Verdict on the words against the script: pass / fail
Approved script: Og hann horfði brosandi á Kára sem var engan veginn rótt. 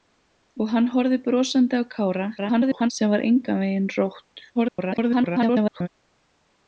fail